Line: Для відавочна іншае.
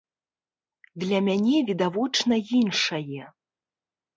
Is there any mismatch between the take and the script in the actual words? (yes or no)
yes